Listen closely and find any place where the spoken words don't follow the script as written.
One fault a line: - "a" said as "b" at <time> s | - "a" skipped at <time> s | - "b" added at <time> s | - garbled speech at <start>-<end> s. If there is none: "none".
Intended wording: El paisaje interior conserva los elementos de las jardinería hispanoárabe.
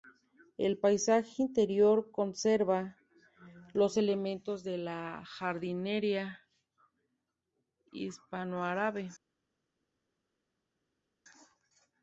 - "las" said as "la" at 4.8 s